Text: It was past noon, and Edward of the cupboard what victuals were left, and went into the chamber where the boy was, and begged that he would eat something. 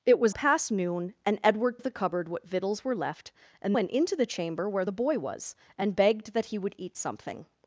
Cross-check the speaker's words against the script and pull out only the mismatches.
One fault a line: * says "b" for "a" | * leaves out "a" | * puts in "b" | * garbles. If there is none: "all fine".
all fine